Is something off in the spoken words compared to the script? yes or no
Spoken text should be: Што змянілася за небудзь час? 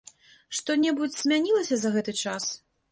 yes